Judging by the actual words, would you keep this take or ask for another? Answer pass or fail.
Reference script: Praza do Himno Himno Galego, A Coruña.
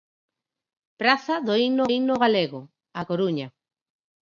pass